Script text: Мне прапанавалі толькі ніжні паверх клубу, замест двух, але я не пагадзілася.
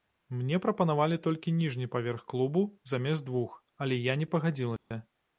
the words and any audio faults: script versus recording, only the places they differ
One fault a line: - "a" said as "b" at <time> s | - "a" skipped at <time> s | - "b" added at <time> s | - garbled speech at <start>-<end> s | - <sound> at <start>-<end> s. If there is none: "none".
- dropout at 4.8-4.9 s